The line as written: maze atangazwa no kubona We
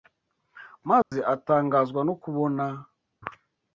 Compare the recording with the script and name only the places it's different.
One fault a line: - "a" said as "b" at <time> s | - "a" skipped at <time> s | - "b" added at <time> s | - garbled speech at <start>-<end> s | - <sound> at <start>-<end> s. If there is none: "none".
- dropout at 1.0-1.1 s